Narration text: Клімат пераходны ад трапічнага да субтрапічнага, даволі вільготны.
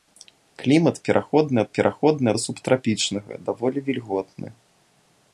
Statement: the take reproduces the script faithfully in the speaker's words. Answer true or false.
false